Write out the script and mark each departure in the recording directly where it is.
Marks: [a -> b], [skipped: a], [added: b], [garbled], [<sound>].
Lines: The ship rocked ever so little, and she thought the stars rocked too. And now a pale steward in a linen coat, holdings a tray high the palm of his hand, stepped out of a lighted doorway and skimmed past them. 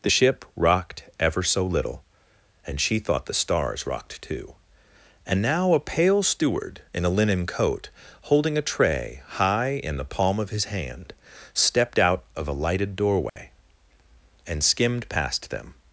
The ship rocked ever so little, and she thought the stars rocked too. And now a pale steward in a linen coat, [holdings -> holding] a tray high [added: in] the palm of his hand, stepped out of a lighted doorway [dropout] and skimmed past them.